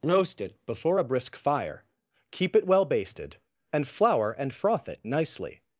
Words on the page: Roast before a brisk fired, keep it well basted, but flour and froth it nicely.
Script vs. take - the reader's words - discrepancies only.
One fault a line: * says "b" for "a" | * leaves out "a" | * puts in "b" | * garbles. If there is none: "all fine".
* puts in "it"
* says "fire" for "fired"
* says "and" for "but"